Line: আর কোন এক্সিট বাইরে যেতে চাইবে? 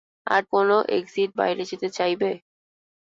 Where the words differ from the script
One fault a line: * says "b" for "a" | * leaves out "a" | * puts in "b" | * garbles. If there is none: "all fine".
all fine